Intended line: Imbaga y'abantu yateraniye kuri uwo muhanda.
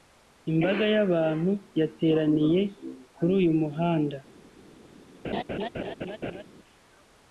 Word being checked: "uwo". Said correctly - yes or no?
no